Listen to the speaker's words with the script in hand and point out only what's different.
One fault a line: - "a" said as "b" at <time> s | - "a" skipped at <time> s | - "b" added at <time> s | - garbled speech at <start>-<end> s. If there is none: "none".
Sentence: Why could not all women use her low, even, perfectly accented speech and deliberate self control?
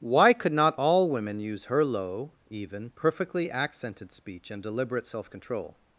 none